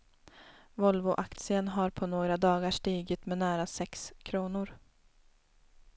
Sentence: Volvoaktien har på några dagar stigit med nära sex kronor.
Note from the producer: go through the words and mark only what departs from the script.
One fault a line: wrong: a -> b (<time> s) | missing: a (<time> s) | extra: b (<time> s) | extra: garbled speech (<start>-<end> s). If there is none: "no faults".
no faults